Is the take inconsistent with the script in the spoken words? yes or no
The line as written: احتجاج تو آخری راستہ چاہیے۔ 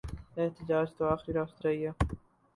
no